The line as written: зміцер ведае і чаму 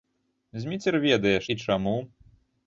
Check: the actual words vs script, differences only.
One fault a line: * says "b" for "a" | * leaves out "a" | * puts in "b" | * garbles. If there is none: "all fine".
all fine